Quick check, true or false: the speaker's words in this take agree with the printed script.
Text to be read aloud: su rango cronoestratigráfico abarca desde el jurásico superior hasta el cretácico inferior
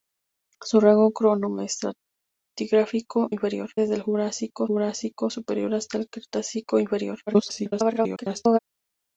false